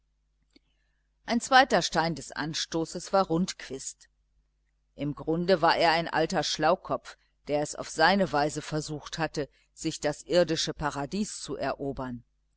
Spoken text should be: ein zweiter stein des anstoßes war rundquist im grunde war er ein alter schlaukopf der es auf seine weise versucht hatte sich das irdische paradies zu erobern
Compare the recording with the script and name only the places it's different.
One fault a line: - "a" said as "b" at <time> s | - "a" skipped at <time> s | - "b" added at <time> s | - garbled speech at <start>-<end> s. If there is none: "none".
none